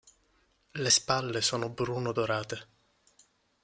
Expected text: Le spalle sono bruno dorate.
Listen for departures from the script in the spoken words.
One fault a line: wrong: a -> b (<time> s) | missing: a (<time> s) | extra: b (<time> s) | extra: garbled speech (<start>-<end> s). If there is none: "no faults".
no faults